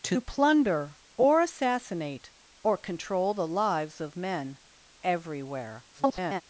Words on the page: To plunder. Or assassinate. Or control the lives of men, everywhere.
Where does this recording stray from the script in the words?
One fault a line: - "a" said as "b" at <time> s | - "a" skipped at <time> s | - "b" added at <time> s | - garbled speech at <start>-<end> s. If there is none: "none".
- garbled speech at 5.9-6.4 s